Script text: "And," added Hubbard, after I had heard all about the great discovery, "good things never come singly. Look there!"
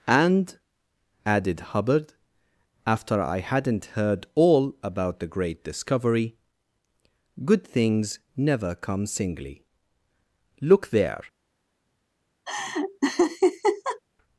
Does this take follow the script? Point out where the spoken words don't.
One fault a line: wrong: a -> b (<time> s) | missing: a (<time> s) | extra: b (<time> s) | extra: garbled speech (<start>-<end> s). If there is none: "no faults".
wrong: had -> hadn't (3.4 s)